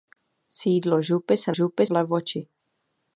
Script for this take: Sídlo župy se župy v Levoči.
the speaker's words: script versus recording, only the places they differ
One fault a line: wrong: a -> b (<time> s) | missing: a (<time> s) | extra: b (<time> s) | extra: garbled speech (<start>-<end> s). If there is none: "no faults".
no faults